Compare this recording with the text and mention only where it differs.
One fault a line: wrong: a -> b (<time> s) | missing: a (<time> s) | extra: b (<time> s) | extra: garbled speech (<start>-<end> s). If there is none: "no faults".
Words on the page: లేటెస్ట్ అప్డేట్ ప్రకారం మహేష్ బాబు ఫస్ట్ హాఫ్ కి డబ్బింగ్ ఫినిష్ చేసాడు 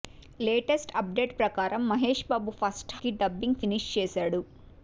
missing: హాఫ్ (3.0 s)